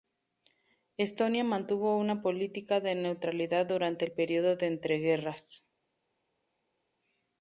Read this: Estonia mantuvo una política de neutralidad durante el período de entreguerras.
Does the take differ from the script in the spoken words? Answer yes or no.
no